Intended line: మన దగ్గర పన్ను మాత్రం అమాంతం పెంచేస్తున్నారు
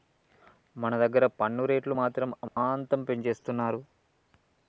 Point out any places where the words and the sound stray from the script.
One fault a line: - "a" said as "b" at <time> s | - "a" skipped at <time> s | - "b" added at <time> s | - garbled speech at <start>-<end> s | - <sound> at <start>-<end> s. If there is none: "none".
- "రేట్లు" added at 1.6 s
- dropout at 2.5-2.6 s